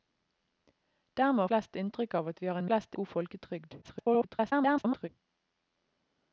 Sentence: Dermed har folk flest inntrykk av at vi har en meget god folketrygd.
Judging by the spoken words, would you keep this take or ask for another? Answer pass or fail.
fail